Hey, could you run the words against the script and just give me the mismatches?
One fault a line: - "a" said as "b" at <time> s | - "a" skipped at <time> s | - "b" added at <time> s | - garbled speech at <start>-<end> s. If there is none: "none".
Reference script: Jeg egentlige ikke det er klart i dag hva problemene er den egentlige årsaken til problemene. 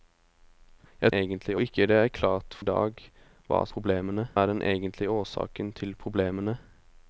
none